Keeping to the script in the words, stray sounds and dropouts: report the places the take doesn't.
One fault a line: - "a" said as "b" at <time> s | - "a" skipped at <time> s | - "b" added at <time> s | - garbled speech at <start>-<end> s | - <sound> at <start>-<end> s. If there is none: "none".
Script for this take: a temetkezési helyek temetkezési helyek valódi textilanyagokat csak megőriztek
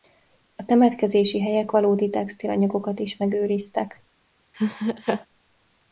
- "temetkezési helyek" skipped at 1.7 s
- "csak" said as "is" at 3.0 s
- laugh at 4.5-5.3 s